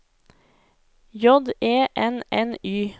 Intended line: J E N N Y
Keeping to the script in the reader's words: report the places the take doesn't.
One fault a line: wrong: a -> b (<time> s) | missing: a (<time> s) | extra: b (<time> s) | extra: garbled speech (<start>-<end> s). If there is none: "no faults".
no faults